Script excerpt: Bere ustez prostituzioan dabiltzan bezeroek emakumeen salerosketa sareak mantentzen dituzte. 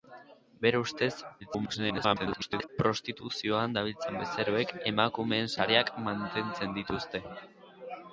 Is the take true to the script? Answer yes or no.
no